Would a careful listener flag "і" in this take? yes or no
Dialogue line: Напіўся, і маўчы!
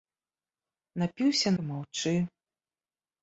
no